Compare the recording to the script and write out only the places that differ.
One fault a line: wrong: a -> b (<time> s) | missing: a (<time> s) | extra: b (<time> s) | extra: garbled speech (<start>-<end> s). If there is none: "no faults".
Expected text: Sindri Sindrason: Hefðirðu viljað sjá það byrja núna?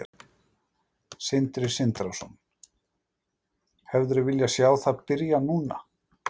no faults